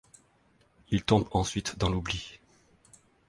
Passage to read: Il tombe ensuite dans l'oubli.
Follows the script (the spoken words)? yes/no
yes